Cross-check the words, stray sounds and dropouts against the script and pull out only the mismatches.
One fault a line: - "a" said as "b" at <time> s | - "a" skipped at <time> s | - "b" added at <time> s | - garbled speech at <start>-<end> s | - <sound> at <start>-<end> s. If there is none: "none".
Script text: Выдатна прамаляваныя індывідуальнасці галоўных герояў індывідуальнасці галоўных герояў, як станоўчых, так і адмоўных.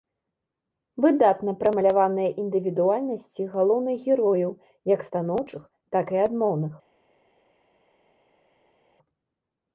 - "індывідуальнасці галоўных герояў" skipped at 4.5 s